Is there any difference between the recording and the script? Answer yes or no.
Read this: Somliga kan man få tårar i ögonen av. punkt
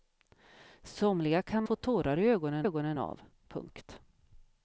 yes